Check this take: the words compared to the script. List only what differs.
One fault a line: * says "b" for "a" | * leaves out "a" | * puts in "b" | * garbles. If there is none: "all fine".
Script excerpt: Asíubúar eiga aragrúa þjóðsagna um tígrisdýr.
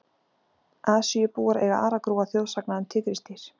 all fine